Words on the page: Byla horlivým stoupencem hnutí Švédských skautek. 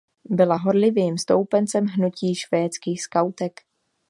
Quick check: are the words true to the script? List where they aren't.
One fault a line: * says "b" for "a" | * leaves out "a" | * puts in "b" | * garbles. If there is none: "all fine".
all fine